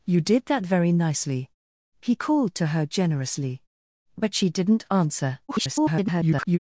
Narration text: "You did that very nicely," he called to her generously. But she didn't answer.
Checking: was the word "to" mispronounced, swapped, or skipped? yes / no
no